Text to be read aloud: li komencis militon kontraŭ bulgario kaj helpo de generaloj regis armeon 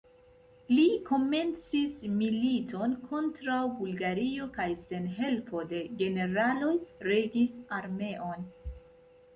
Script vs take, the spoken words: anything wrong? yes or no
yes